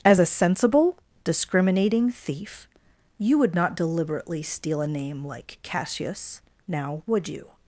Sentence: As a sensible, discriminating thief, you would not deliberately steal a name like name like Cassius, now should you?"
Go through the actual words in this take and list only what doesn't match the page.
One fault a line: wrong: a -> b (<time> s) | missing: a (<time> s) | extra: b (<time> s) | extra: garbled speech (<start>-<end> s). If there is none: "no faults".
missing: name like (5.6 s)
wrong: should -> would (7.0 s)